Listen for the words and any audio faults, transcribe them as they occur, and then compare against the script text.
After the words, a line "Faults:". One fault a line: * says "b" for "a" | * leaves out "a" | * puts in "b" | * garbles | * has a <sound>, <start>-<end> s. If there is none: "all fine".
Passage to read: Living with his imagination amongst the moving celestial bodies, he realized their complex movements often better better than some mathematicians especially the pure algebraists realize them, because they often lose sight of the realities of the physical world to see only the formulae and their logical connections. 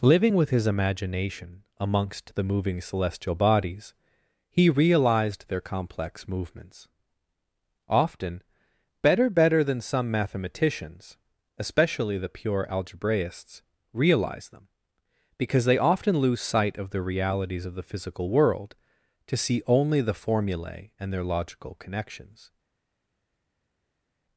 Living with his imagination amongst the moving celestial bodies, he realized their complex movements often better better than some mathematicians especially the pure algebraists realize them, because they often lose sight of the realities of the physical world to see only the formulae and their logical connections.
Faults:
all fine